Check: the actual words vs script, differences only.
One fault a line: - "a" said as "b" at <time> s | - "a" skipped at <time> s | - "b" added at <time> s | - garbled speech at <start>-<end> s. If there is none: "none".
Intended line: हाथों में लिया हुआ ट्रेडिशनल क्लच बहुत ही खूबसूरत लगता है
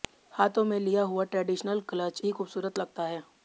- "बहुत" skipped at 2.2 s